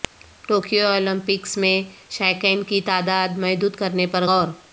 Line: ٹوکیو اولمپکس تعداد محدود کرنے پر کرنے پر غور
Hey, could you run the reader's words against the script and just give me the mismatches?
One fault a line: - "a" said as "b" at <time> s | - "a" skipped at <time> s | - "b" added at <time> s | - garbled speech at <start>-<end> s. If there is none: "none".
- "میں شائقین کی" added at 1.6 s
- "کرنے پر" skipped at 4.2 s